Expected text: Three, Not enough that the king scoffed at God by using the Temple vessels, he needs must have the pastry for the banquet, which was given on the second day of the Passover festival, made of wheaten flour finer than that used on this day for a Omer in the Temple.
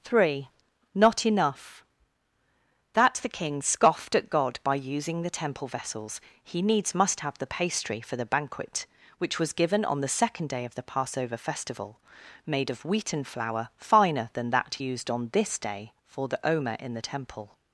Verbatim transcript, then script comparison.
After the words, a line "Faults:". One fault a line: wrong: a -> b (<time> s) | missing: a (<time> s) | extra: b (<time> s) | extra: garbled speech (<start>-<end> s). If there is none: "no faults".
Three, Not enough that the king scoffed at God by using the Temple vessels, he needs must have the pastry for the banquet, which was given on the second day of the Passover festival, made of wheaten flour finer than that used on this day for the Omer in the Temple.
Faults:
wrong: a -> the (16.3 s)